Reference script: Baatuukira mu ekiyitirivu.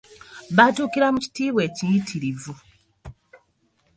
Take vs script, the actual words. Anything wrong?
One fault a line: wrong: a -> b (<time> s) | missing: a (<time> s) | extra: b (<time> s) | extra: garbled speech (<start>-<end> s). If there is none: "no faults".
extra: kitiibwa (1.2 s)